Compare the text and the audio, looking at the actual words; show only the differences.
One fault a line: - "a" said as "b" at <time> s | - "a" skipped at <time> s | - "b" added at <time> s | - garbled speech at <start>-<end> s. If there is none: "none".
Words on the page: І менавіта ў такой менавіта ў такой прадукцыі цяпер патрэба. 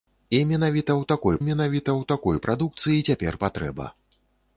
none